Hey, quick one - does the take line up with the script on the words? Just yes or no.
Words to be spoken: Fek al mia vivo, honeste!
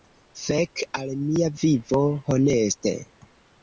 yes